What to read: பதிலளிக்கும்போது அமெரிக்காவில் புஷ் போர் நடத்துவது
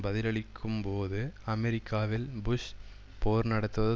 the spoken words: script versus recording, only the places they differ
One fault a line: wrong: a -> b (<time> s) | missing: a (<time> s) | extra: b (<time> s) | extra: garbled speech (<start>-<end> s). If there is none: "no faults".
no faults